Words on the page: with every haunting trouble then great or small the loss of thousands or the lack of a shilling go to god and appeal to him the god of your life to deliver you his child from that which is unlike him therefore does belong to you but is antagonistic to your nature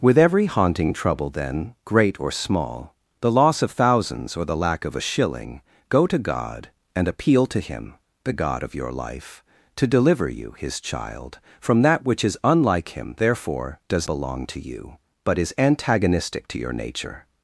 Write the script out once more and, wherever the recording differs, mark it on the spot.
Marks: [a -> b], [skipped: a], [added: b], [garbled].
with every haunting trouble then great or small the loss of thousands or the lack of a shilling go to god and appeal to him the god of your life to deliver you his child from that which is unlike him therefore does belong to you but is antagonistic to your nature